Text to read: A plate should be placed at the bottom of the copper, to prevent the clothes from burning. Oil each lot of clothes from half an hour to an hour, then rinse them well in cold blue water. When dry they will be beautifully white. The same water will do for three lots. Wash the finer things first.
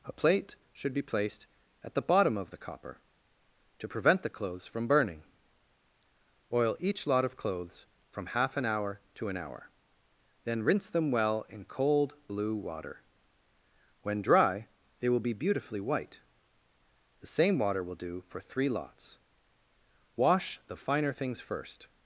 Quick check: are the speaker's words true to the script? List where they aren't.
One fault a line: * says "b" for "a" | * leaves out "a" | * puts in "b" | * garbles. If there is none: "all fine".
all fine